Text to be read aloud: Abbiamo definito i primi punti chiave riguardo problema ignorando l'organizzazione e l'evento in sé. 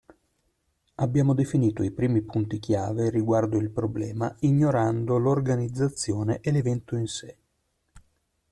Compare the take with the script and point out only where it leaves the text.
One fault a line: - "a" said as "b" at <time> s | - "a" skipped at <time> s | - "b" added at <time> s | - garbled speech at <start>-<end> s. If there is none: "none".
- "il" added at 3.6 s